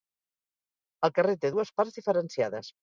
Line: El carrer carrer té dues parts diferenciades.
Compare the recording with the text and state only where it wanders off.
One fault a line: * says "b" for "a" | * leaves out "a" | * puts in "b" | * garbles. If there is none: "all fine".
* leaves out "carrer"